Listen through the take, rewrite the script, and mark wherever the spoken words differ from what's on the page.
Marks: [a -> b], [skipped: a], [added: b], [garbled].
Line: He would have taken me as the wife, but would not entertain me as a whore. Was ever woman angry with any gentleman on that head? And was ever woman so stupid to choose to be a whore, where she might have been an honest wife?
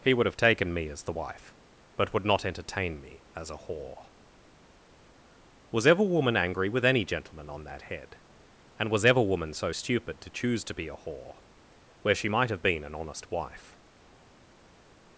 He would have taken me as the wife, but would not entertain me as a whore. Was ever woman angry with any gentleman on that head? And was ever woman so stupid to choose to be a whore, where she might have been an honest wife?